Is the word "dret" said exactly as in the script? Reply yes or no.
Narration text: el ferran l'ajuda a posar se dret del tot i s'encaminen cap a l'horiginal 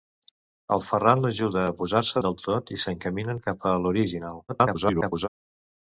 no